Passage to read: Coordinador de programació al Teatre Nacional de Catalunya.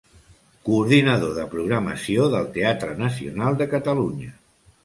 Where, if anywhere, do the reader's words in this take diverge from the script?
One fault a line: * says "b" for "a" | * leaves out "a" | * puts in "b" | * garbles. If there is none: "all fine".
* says "del" for "al"